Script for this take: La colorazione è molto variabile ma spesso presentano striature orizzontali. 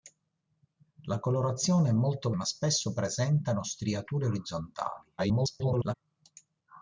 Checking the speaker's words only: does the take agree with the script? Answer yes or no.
no